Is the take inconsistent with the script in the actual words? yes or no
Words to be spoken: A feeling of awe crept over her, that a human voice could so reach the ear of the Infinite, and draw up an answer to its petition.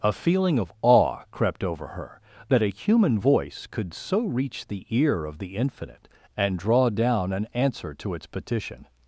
yes